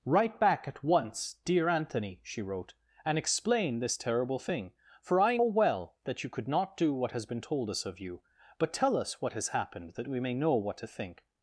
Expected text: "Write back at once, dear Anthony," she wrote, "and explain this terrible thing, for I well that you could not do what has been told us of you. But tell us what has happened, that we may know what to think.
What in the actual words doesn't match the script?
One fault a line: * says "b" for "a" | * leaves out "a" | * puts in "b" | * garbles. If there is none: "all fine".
all fine